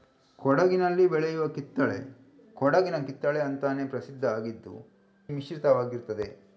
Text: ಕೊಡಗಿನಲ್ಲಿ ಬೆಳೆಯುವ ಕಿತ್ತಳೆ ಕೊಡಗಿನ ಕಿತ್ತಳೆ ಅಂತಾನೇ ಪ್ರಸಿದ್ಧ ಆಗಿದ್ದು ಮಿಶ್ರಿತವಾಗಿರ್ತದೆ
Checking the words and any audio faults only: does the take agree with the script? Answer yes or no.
yes